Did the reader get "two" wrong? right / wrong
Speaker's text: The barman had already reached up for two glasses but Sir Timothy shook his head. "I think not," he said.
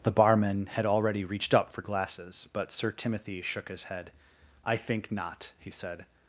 wrong